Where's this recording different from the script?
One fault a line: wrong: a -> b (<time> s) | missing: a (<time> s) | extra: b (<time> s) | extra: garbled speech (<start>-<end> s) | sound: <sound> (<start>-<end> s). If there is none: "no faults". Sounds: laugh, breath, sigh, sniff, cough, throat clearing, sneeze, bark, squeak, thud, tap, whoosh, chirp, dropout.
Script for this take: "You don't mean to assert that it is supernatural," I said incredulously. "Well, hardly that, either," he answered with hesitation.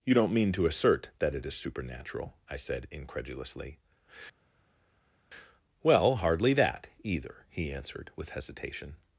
no faults